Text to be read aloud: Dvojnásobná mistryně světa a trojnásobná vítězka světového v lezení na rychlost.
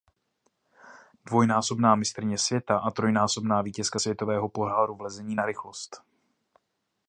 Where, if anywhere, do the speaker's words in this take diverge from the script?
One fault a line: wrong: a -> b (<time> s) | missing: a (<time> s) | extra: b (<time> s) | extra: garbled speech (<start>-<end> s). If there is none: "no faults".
extra: poháru (4.5 s)